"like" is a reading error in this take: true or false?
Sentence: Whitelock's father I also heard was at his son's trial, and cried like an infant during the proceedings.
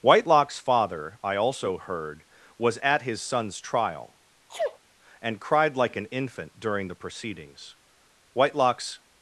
false